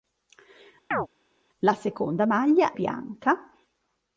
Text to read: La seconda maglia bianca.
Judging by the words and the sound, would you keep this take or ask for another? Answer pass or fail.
fail